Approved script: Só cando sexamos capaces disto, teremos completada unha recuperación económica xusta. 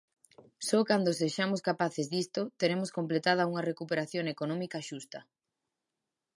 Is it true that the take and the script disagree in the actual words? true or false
false